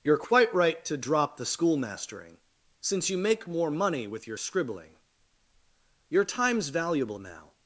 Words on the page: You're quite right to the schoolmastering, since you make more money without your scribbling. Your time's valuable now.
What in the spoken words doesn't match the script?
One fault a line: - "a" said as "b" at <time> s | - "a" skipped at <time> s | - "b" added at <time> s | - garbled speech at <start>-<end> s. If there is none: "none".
- "drop" added at 1.0 s
- "without" said as "with" at 4.0 s